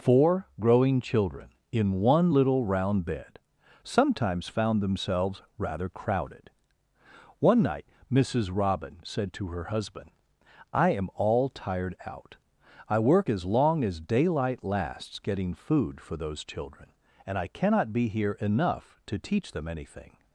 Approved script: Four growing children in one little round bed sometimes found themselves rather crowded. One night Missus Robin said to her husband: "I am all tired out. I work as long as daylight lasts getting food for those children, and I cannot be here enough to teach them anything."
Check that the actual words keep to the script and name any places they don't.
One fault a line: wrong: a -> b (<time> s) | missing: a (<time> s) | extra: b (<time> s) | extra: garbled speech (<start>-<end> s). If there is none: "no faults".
no faults